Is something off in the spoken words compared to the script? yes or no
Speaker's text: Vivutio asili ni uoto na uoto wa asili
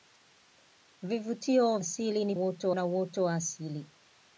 no